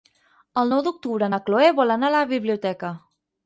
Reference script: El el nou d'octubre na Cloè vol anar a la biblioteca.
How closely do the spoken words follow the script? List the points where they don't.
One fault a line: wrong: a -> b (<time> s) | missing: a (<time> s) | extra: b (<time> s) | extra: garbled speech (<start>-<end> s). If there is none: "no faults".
missing: el (0.7 s)